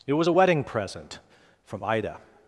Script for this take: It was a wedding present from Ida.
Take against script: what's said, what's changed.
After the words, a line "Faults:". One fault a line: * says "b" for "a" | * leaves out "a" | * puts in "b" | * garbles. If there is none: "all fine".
It was a wedding present from Ida.
Faults:
all fine